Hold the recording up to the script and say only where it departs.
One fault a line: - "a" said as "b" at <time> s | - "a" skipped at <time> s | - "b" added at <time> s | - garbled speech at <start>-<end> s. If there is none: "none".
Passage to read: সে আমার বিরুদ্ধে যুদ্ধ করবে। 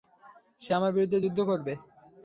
none